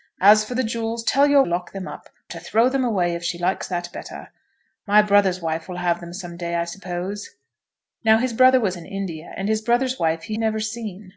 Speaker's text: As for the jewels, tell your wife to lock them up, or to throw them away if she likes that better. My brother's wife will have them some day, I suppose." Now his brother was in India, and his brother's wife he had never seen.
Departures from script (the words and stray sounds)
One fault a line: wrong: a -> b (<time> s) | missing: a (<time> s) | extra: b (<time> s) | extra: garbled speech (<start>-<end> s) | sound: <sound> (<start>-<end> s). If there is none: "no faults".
missing: wife to (1.4 s)
missing: had (10.3 s)